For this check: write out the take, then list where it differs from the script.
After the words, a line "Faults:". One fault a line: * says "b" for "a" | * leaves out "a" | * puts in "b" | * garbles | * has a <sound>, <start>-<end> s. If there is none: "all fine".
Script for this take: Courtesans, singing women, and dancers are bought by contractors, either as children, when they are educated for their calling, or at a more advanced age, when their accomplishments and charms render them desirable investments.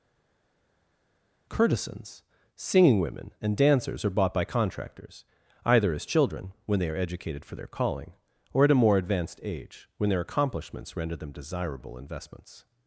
Courtesans, singing women, and dancers are bought by contractors, either as children, when they are educated for their calling, or at a more advanced age, when their accomplishments render them desirable investments.
Faults:
* leaves out "and charms"